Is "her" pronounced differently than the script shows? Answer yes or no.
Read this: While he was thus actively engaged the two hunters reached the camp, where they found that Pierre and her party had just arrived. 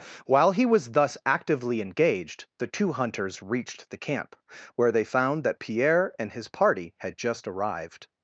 yes